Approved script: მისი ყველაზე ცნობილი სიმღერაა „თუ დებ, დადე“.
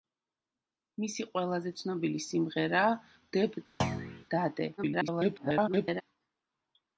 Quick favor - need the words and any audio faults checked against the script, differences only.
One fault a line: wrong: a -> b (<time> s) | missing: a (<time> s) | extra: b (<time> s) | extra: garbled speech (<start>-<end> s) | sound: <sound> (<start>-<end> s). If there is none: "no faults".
missing: თუ (3.0 s)
sound: thud (3.8-4.2 s)
extra: garbled speech (4.8-6.0 s)